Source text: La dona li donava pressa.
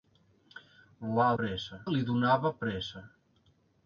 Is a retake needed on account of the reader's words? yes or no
yes